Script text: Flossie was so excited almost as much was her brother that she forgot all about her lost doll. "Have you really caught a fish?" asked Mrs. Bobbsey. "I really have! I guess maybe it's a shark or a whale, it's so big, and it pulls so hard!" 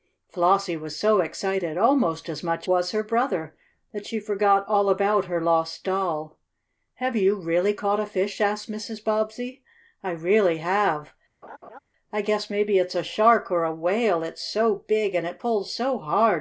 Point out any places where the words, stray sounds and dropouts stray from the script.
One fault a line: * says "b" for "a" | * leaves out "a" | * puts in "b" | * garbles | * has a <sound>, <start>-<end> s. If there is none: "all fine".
* has a laugh, 11.4-11.8 s